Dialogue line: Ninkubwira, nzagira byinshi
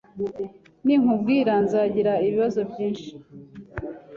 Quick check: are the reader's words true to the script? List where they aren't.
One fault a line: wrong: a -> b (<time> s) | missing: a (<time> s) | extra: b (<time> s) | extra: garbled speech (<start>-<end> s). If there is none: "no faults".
extra: ibibazo (2.3 s)